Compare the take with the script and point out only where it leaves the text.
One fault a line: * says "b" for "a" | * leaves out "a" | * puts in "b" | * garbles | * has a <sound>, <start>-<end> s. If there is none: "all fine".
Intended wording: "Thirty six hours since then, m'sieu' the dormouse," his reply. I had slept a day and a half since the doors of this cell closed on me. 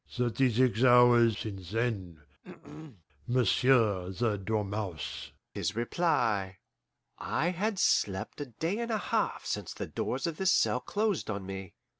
* has a throat clearing, 2.4-3.0 s